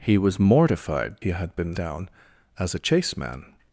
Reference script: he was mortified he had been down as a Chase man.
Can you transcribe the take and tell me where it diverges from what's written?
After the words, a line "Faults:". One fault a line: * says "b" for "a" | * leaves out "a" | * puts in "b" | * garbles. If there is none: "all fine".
he was mortified he had been down as a Chase man.
Faults:
all fine